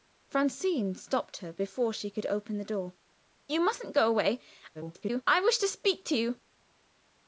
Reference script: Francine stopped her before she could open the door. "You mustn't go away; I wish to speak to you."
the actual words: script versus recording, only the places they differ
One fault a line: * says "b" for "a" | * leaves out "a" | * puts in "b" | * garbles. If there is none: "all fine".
* garbles